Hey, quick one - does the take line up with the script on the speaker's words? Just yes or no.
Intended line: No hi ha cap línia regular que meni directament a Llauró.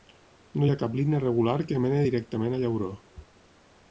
yes